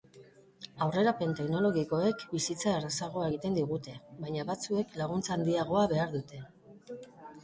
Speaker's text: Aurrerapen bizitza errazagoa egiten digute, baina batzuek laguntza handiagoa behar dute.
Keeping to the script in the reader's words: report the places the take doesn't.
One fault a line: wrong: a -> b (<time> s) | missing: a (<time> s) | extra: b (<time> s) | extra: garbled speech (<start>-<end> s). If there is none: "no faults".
extra: teknologikoek (1.4 s)